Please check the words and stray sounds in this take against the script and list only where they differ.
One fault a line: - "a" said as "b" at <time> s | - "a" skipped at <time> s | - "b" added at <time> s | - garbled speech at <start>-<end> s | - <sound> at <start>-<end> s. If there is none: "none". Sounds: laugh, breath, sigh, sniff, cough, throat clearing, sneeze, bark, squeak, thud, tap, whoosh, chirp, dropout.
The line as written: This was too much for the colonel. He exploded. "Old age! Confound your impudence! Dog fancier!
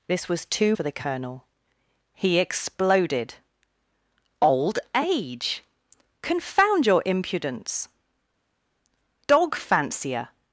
- "much" skipped at 0.8 s